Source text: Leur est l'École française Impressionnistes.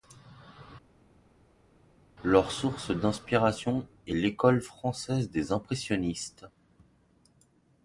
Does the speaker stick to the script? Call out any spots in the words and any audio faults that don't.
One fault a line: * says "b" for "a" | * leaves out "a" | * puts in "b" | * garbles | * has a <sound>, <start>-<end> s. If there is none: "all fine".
* puts in "source d'inspiration"
* puts in "des"